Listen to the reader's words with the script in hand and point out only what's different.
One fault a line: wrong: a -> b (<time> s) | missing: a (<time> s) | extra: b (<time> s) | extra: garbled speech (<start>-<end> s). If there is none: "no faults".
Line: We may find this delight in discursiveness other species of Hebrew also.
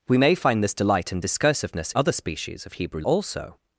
no faults